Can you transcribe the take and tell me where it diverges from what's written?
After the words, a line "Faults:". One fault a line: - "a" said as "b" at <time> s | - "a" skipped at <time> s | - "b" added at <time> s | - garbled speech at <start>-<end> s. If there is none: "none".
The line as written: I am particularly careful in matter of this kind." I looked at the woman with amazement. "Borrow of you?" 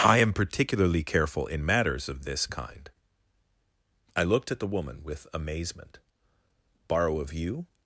I am particularly careful in matters of this kind." I looked at the woman with amazement. "Borrow of you?"
Faults:
- "matter" said as "matters" at 1.6 s